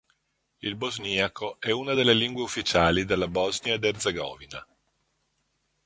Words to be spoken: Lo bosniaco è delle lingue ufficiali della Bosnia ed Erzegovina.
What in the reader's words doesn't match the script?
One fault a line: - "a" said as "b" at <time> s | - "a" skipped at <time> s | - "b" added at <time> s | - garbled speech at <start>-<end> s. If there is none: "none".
- "Lo" said as "Il" at 0.6 s
- "una" added at 1.7 s